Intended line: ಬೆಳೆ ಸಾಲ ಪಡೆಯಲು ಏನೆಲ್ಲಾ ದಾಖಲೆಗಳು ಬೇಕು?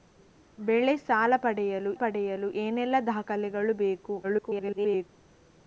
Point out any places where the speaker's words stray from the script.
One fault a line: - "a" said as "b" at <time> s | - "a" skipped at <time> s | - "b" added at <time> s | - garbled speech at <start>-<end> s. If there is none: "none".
- "ಪಡೆಯಲು" added at 1.9 s
- garbled speech at 4.2-5.1 s